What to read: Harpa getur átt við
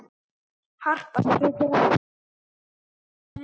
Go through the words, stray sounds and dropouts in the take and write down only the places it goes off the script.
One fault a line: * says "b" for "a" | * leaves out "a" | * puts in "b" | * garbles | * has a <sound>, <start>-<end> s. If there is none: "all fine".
all fine